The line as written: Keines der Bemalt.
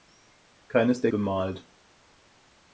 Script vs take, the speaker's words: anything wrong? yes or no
no